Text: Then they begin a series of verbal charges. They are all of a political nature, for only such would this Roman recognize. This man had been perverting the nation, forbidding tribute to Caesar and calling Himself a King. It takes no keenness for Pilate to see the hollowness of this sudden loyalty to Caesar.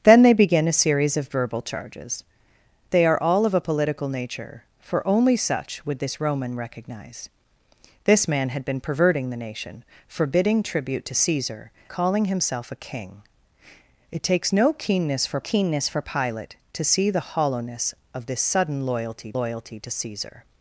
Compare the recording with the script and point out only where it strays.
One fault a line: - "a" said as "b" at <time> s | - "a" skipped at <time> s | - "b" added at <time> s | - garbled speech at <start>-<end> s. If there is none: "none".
- "and" skipped at 11.7 s
- "keenness for" added at 15.4 s
- "loyalty" added at 19.3 s